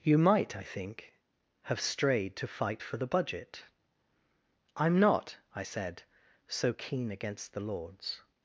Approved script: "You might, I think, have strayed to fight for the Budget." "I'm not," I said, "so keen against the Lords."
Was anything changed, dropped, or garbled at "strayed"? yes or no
no